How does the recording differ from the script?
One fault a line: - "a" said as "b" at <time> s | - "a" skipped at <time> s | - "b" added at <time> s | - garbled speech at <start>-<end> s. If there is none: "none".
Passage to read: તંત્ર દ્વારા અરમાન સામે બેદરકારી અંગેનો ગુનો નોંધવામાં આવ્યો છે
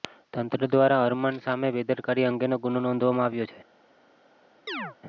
none